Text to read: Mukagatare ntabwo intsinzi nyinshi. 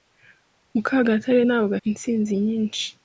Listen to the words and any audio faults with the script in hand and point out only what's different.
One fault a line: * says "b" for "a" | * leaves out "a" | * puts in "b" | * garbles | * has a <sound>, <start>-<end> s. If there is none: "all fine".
all fine